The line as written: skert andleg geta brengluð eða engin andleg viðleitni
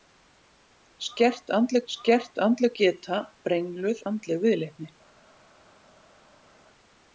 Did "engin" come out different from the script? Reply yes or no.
yes